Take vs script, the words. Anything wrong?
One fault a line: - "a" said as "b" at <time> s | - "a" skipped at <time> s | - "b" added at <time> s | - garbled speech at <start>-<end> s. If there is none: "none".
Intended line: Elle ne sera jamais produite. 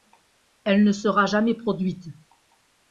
none